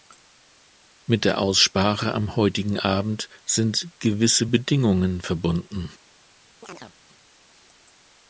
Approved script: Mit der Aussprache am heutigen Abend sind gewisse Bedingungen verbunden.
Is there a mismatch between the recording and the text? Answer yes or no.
no